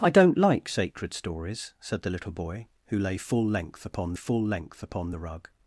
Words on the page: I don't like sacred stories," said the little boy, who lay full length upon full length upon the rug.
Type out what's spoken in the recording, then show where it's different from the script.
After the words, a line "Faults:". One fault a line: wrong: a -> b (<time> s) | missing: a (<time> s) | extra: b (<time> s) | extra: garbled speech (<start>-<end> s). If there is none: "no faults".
I don't like sacred stories," said the little boy, who lay full length upon full length upon the rug.
Faults:
no faults